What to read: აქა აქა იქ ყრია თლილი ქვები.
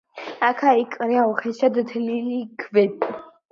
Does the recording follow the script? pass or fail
fail